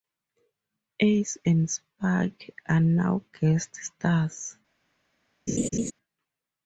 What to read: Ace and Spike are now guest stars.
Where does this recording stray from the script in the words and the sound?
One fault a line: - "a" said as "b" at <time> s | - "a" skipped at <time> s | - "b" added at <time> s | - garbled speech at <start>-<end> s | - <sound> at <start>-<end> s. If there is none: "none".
- laugh at 5.5-5.9 s